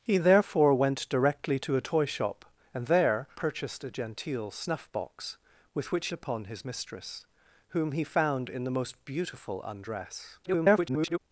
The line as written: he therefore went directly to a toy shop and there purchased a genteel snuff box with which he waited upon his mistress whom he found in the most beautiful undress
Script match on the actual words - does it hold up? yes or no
no